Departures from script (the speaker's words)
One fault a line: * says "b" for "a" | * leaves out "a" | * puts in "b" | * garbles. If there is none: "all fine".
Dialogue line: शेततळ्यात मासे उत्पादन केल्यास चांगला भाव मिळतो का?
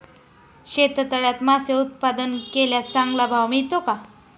all fine